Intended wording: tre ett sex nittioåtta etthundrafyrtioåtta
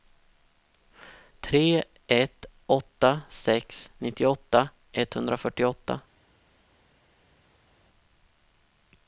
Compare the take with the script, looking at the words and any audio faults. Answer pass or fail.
fail